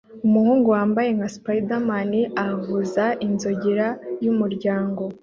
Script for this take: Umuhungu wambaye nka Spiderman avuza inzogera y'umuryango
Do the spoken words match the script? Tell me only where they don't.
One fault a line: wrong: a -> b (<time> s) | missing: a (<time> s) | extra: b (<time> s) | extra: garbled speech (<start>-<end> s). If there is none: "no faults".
no faults